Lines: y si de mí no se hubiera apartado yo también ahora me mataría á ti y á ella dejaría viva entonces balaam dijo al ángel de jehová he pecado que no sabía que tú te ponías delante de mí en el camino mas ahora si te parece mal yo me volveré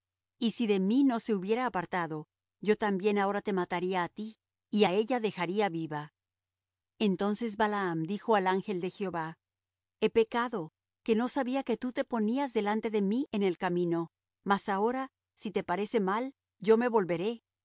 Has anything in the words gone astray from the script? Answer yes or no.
yes